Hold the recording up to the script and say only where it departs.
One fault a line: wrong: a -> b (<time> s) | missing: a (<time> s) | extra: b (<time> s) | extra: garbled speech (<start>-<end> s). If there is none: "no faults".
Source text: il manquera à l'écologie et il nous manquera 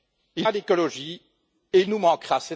missing: manquera (0.5 s)